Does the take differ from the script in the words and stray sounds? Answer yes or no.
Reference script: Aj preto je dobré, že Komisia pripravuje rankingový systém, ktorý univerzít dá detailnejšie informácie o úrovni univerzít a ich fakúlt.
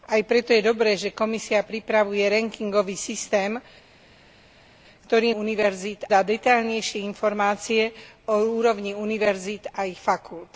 no